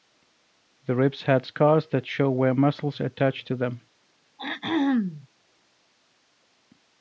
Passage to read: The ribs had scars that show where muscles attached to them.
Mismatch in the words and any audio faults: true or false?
true